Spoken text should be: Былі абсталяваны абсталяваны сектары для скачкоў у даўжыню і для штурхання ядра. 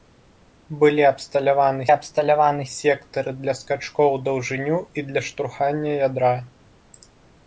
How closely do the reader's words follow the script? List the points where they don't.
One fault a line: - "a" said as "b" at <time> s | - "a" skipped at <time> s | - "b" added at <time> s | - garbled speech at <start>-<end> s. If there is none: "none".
none